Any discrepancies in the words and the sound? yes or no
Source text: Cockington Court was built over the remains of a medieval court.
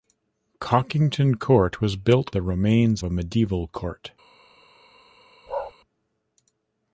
yes